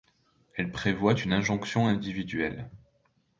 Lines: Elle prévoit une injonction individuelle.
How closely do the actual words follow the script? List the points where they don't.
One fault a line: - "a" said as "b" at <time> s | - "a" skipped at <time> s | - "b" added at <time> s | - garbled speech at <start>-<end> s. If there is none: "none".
none